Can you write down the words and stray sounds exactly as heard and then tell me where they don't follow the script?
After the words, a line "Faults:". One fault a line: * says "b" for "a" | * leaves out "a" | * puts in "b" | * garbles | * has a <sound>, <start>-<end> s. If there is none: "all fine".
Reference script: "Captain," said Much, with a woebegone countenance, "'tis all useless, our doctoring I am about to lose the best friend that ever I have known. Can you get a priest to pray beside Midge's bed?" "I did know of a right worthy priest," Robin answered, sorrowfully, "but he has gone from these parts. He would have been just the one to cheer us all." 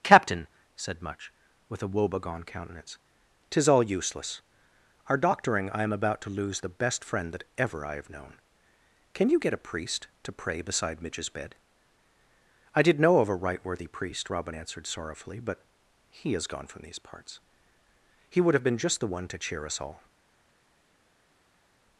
"Captain," said Much, with a woebegone countenance, "'tis all useless, our doctoring I am about to lose the best friend that ever I have known. Can you get a priest to pray beside Midge's bed?" "I did know of a right worthy priest," Robin answered, sorrowfully, "but he has gone from these parts. He would have been just the one to cheer us all."
Faults:
all fine